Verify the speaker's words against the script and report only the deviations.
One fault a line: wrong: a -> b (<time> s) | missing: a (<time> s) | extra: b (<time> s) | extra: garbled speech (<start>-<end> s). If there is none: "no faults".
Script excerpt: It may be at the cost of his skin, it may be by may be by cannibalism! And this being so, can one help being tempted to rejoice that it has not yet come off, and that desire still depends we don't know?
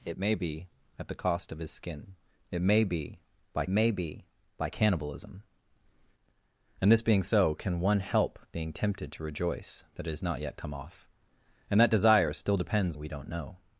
no faults